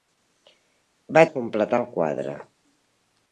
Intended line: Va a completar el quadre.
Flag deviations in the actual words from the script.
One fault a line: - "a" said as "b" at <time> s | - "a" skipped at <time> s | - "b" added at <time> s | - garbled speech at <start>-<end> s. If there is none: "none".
none